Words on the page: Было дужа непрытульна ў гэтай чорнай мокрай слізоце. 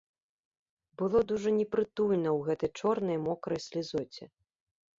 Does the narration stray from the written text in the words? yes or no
no